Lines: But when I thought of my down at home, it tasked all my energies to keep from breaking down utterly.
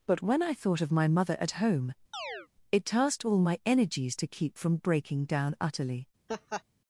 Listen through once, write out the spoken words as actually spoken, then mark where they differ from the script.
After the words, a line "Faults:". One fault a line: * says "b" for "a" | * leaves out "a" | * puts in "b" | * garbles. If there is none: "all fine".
But when I thought of my mother at home, it tasked all my energies to keep from breaking down utterly.
Faults:
* says "mother" for "down"